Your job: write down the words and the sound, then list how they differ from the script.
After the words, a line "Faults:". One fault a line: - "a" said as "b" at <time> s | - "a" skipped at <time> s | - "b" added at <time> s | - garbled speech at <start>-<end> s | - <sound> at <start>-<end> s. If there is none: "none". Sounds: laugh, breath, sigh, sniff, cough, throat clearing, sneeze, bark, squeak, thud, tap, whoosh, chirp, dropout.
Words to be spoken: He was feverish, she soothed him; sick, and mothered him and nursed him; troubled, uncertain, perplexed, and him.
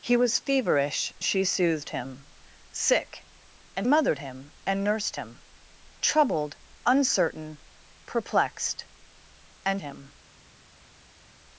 He was feverish, she soothed him; sick, and mothered him and nursed him; troubled, uncertain, perplexed, and him.
Faults:
none